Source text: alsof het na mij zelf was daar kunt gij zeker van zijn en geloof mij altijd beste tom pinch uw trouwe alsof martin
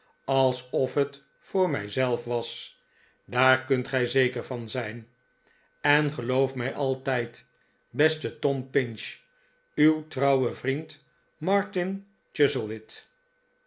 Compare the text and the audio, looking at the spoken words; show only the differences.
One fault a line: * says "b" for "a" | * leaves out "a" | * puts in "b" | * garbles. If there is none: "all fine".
* says "voor" for "na"
* says "vriend" for "alsof"